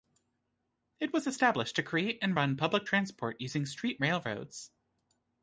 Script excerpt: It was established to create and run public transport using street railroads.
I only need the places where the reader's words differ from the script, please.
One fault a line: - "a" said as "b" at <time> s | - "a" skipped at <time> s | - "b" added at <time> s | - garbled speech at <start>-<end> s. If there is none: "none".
none